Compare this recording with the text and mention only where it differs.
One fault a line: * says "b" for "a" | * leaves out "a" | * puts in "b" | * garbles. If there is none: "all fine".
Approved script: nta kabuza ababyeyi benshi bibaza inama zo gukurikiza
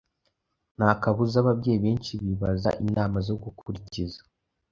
all fine